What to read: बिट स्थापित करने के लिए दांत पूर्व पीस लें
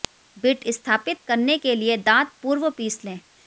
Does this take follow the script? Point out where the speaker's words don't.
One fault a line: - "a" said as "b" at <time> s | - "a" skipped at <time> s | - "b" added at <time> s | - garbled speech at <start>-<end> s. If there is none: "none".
none